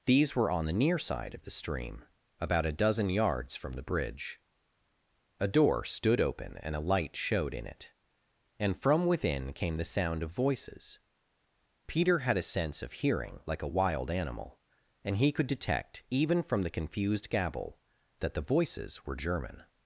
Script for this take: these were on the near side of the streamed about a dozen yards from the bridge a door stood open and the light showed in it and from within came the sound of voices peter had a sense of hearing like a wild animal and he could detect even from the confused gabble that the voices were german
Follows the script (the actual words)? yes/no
no